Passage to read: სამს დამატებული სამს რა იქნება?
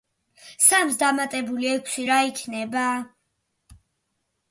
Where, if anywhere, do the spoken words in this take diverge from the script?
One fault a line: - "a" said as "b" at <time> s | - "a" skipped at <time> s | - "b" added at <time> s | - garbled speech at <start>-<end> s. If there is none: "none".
- "სამს" said as "ექვსი" at 1.7 s